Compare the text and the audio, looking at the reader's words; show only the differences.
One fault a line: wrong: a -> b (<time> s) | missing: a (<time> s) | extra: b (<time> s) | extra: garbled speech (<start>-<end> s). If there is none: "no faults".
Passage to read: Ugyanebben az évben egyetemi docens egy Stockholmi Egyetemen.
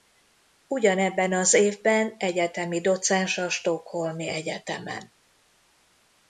wrong: egy -> a (3.4 s)